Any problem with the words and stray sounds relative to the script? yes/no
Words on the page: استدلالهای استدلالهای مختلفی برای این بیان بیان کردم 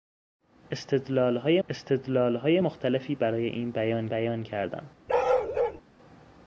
yes